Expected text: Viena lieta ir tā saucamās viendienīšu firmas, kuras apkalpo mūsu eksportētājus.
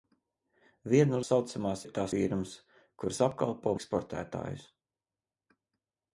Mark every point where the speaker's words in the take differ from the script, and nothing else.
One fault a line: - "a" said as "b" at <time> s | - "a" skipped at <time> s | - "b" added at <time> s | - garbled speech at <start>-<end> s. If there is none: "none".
- "lieta" said as "saucamās" at 1.3 s
- "saucamās viendienīšu" skipped at 2.0 s
- "mūsu" skipped at 3.8 s